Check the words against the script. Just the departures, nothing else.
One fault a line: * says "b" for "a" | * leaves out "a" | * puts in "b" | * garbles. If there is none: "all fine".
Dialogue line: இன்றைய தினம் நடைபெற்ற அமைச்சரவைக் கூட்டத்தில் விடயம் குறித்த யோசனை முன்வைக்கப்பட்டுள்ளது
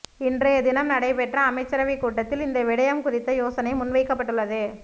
* puts in "இந்த"